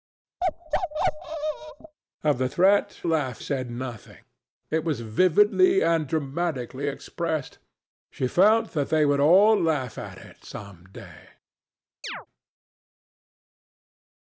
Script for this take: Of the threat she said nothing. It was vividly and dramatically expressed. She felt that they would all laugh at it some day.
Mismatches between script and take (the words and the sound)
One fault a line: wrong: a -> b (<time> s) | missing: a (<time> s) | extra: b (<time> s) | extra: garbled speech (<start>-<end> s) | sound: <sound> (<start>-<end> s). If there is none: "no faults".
sound: bark (0.4-2.0 s)
wrong: she -> laugh (3.1 s)
sound: chirp (12.0-12.3 s)